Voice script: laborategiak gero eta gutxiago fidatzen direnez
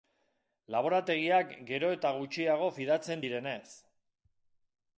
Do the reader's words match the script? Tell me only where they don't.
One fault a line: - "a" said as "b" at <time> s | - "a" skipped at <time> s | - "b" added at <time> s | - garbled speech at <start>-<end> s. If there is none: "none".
none